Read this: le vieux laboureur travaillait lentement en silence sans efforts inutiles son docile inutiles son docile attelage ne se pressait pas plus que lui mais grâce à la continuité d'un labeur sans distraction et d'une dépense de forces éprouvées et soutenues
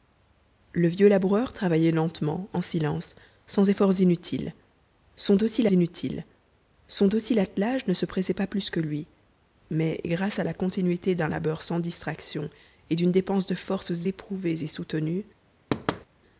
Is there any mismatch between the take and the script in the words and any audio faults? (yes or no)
yes